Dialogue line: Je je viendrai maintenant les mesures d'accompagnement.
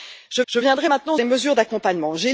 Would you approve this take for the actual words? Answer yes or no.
yes